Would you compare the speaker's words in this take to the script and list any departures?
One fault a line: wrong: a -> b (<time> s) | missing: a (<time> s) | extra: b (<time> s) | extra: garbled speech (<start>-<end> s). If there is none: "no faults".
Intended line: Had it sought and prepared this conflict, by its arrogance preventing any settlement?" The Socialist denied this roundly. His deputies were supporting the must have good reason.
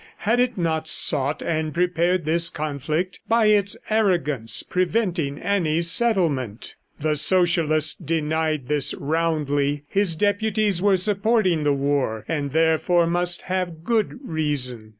extra: not (0.6 s)
extra: war and therefore (11.7 s)